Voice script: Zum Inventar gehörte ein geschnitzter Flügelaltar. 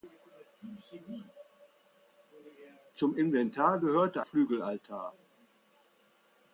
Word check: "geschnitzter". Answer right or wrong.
wrong